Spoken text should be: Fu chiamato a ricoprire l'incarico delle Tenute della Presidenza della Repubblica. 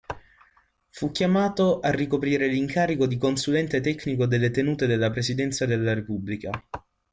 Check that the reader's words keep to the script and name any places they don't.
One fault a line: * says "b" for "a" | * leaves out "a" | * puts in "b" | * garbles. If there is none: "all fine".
* puts in "di Consulente Tecnico"